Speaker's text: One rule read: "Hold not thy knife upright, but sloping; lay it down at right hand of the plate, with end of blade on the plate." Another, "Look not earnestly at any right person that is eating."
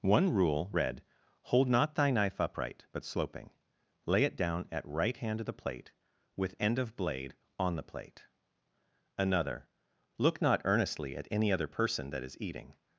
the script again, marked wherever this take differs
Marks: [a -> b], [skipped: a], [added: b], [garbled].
One rule read: "Hold not thy knife upright, but sloping; lay it down at right hand of the plate, with end of blade on the plate." Another, "Look not earnestly at any [right -> other] person that is eating."